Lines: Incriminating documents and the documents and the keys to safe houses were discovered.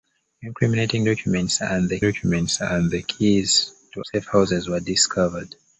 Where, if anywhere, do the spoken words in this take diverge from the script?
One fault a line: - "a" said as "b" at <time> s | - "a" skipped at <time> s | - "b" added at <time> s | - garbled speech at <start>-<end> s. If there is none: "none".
none